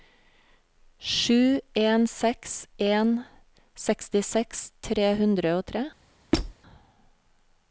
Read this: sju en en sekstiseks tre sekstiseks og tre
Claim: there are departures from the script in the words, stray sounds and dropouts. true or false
true